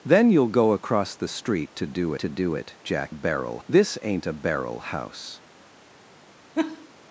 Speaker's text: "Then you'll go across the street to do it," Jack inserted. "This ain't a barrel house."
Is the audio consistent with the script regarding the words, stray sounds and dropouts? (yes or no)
no